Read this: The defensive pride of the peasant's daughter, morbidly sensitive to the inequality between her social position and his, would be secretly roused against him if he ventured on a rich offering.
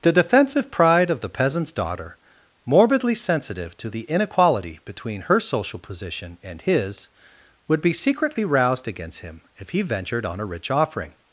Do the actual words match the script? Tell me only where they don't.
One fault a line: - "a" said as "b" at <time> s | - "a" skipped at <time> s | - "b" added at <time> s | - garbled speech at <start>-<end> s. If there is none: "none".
none